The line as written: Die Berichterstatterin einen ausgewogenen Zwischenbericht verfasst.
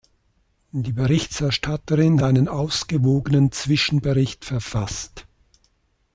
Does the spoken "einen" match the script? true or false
true